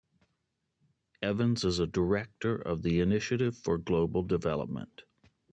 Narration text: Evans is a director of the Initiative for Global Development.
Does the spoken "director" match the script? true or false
true